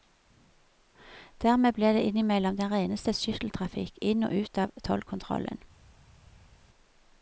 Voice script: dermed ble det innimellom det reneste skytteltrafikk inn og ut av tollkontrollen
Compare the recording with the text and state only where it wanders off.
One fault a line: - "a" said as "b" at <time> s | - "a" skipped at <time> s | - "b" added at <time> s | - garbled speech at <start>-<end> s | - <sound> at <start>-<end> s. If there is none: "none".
- "det" said as "den" at 2.6 s